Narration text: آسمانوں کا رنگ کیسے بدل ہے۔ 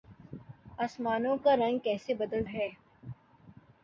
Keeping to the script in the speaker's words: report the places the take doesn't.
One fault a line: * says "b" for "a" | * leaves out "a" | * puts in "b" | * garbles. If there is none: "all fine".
all fine